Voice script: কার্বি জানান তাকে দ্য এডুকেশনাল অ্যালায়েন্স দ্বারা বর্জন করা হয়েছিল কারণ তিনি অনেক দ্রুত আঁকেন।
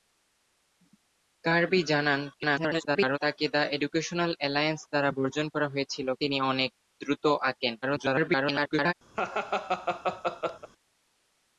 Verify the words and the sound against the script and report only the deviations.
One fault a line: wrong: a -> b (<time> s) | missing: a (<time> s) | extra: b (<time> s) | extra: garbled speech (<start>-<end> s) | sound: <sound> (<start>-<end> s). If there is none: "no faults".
extra: garbled speech (2.3-3.2 s)
missing: কারণ (6.1 s)
extra: garbled speech (7.8-8.9 s)
sound: laugh (9.1-10.7 s)